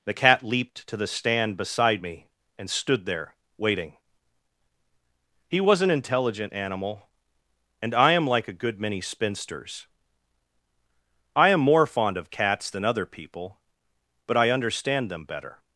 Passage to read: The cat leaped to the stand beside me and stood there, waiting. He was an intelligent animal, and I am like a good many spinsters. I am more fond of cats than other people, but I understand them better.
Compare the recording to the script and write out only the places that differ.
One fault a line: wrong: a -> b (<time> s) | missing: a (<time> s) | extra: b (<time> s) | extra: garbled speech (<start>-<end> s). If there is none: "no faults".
no faults